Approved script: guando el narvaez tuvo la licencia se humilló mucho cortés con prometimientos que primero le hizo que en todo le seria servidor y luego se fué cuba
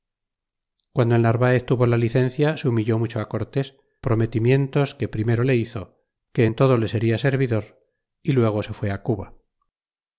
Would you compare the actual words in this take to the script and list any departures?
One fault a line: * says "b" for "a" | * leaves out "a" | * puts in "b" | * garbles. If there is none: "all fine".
* leaves out "con"